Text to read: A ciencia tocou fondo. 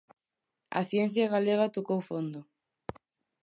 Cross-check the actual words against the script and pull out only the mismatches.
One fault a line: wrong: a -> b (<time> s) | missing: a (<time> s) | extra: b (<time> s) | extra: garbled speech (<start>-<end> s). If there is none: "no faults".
extra: galega (1.3 s)